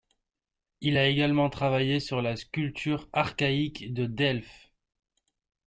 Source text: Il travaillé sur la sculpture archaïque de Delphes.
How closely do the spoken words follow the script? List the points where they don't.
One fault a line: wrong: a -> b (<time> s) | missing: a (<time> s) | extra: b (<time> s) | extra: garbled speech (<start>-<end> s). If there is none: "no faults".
extra: a également (1.0 s)